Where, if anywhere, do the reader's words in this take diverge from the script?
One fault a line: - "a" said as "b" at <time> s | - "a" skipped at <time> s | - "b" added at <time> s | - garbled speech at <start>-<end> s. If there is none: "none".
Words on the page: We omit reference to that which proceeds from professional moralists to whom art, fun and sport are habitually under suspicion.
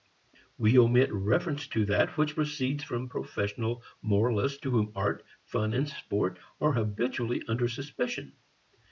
none